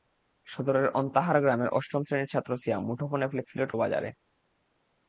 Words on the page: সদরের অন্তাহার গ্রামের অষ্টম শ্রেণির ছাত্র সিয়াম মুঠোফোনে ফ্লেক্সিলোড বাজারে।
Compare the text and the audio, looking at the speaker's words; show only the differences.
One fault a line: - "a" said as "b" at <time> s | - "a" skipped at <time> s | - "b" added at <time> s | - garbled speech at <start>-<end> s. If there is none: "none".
none